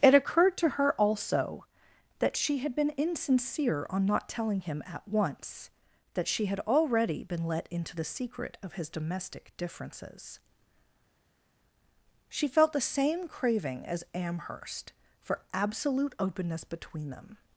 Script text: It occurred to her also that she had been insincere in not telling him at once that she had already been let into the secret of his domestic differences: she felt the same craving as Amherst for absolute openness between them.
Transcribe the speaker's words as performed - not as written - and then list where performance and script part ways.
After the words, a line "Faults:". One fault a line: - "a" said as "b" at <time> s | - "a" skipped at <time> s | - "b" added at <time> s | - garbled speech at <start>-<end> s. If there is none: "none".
It occurred to her also that she had been insincere on not telling him at once that she had already been let into the secret of his domestic differences: she felt the same craving as Amherst for absolute openness between them.
Faults:
- "in" said as "on" at 3.9 s